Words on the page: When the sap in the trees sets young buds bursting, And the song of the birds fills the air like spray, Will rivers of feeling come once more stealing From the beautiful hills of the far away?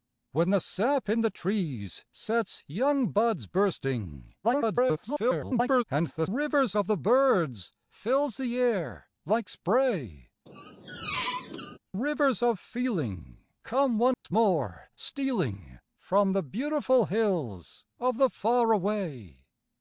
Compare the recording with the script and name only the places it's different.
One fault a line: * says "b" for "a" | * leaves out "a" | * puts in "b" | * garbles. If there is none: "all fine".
* garbles
* says "rivers" for "song"
* leaves out "Will"